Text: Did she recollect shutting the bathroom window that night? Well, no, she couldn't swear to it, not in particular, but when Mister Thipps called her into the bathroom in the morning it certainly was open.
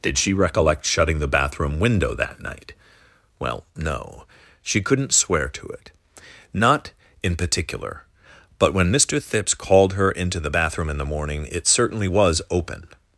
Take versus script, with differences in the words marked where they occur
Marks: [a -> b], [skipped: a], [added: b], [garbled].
Did she recollect shutting the bathroom window that night? Well, no, she couldn't swear to it, not in particular, but when Mister Thipps called her into the bathroom in the morning it certainly was open.